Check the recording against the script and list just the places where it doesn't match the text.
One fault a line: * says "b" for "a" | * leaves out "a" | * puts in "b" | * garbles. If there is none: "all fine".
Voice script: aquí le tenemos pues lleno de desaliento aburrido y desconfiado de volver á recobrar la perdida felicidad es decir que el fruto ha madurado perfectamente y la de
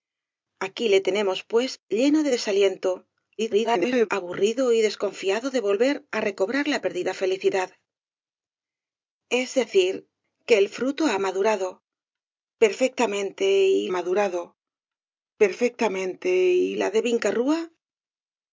* garbles
* puts in "madurado perfectamente y"